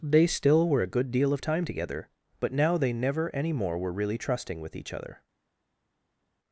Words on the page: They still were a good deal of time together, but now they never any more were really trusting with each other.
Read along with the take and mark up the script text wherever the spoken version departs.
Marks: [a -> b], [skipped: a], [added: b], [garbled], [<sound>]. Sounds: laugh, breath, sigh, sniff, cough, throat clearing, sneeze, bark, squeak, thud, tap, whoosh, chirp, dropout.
They still were a good deal of time together, but now they never any more were really trusting with each other.